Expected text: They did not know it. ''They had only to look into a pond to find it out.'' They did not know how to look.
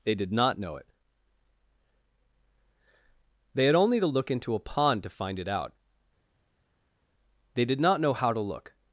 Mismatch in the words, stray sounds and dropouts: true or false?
false